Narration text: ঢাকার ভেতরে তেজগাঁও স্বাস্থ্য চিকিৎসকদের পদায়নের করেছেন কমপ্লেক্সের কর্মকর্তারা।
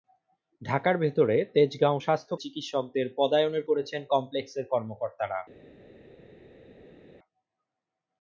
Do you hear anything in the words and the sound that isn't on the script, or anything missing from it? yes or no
no